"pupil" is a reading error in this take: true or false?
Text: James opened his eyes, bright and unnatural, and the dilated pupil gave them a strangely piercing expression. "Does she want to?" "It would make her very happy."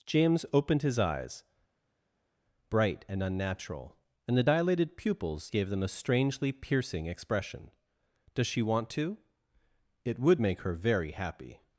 true